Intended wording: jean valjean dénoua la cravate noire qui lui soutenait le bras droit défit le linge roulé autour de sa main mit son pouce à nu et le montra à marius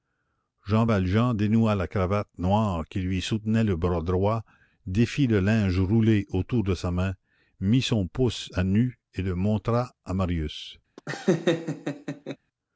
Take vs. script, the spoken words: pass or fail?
pass